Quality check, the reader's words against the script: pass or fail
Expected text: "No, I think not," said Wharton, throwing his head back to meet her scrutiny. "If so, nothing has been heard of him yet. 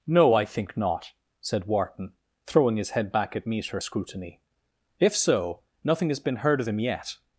fail